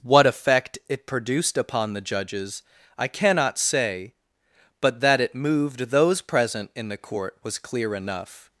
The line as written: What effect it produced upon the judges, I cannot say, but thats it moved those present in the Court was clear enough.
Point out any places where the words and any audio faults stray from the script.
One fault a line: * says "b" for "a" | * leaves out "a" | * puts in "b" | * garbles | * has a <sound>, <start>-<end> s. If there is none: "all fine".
* says "that" for "thats"